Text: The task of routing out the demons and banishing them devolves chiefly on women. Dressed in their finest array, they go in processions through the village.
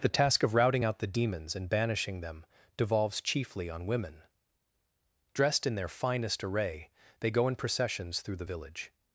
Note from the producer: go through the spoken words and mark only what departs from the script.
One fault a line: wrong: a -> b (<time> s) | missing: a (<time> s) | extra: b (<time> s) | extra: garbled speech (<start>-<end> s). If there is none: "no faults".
no faults